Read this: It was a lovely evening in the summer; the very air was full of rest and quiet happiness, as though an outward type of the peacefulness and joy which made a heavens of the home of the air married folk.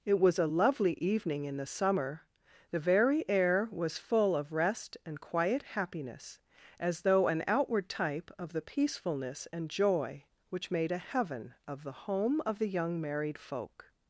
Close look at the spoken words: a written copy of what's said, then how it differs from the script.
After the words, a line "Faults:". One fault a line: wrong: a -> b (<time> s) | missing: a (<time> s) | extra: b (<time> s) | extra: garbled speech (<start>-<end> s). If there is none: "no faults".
It was a lovely evening in the summer; the very air was full of rest and quiet happiness, as though an outward type of the peacefulness and joy which made a heaven of the home of the young married folk.
Faults:
wrong: heavens -> heaven (11.0 s)
wrong: air -> young (12.7 s)